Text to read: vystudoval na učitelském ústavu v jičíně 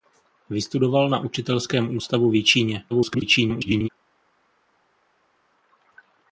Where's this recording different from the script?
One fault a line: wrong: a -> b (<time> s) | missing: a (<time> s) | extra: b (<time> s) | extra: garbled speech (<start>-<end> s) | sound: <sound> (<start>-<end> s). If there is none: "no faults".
extra: garbled speech (2.9-3.9 s)